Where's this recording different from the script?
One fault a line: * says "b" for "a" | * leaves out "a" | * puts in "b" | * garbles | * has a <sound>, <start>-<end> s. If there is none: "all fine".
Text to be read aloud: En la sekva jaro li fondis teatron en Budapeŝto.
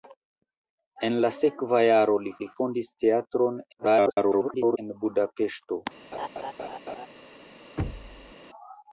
* puts in "li"
* garbles
* has a laugh, 6.1-7.1 s
* has a thud, 7.8-8.3 s